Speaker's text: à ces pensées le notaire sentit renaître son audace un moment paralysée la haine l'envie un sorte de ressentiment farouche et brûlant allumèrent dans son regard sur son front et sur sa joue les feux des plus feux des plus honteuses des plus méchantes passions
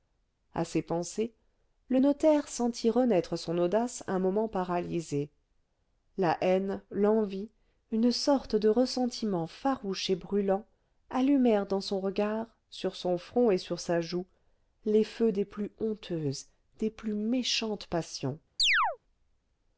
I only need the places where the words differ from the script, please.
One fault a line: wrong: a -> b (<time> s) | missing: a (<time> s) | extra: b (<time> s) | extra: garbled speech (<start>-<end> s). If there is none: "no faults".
wrong: un -> une (7.9 s)
missing: feux des plus (15.7 s)